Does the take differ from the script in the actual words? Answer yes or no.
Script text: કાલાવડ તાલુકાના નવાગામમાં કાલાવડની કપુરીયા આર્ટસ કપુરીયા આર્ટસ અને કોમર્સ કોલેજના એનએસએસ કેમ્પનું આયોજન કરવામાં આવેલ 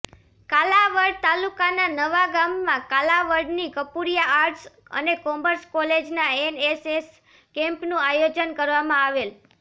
yes